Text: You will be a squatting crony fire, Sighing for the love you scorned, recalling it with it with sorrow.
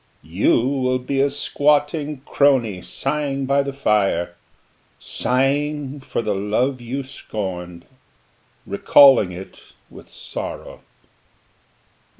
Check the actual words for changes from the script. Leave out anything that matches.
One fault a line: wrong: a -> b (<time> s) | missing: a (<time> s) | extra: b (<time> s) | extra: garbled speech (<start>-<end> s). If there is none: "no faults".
extra: sighing by the (2.8 s)
missing: it with (10.1 s)